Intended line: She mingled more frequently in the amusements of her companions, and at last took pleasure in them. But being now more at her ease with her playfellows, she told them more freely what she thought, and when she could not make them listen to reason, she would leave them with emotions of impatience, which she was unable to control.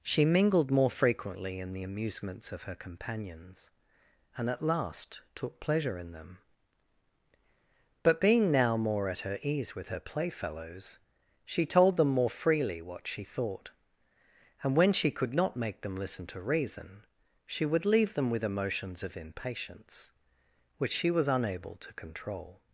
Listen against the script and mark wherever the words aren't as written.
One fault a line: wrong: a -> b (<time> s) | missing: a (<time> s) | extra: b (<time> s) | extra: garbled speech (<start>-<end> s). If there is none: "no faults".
no faults